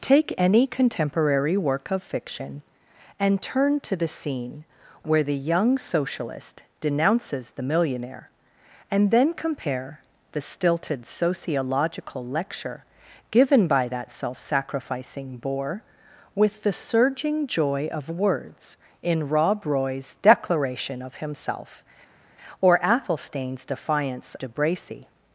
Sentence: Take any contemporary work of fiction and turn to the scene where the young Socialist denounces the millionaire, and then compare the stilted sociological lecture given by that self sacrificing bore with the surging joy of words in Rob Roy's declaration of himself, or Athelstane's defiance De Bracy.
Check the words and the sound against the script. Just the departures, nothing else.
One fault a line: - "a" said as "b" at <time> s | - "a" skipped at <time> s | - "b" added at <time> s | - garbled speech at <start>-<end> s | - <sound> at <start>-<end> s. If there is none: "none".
none